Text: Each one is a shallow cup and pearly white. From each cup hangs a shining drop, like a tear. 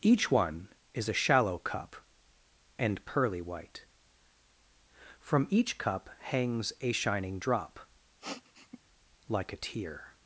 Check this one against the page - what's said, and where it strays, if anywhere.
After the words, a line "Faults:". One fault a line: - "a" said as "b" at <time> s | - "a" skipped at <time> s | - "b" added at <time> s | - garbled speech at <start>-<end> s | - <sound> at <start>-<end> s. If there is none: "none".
Each one is a shallow cup and pearly white. From each cup hangs a shining drop, like a tear.
Faults:
- sniff at 8.2-8.8 s